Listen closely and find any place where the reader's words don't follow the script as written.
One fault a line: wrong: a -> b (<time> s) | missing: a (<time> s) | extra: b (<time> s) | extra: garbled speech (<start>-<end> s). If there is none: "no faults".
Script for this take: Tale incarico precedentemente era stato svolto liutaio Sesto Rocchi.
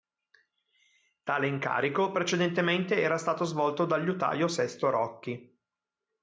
extra: dal (3.9 s)